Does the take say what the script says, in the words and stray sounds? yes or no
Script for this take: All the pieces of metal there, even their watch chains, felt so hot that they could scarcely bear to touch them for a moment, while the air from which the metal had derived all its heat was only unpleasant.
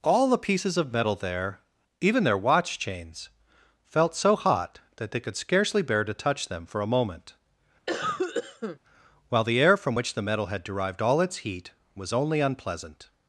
no